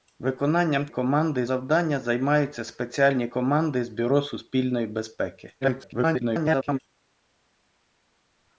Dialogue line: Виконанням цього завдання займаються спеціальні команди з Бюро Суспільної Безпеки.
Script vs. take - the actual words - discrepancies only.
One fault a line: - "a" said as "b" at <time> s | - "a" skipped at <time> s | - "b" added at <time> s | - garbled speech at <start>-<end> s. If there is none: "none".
- "цього" said as "команди" at 0.9 s
- garbled speech at 5.6-6.8 s